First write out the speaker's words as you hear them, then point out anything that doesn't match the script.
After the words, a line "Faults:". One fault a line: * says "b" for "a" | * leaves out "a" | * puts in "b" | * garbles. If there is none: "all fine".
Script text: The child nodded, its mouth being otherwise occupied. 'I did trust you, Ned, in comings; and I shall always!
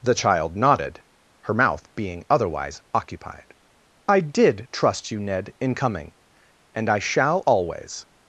The child nodded, her mouth being otherwise occupied. 'I did trust you, Ned, in coming; and I shall always!
Faults:
* says "her" for "its"
* says "coming" for "comings"